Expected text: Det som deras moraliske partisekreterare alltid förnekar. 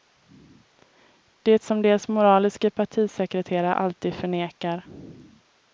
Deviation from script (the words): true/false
false